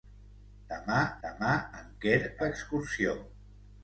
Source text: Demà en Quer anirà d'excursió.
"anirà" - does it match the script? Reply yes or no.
no